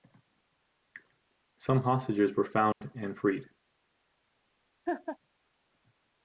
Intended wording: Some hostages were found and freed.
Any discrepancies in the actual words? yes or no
no